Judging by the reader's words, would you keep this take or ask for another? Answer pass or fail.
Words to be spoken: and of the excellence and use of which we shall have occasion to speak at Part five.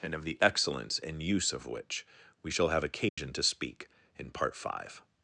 fail